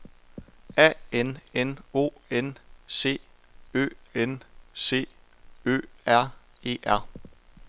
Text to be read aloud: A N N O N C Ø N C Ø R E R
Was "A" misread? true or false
false